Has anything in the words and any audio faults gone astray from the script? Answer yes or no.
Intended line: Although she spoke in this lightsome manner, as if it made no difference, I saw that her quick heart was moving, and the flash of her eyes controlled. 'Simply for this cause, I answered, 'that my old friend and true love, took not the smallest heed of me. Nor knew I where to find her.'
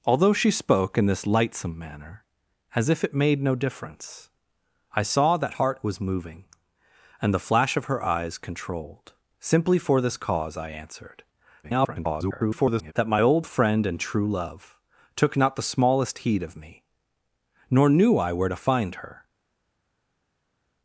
yes